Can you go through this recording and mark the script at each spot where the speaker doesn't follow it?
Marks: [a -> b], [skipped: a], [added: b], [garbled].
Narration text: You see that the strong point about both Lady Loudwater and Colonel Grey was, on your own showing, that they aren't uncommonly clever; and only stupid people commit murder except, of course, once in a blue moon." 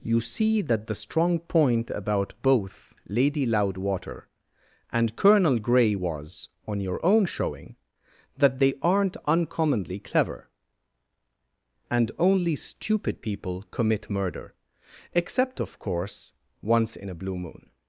You see that the strong point about both Lady Loudwater and Colonel Grey was, on your own showing, that they aren't uncommonly clever; and only stupid people commit murder except, of course, once in a blue moon."